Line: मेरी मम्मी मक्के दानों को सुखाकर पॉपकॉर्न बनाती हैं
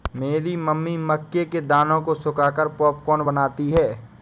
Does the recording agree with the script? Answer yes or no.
no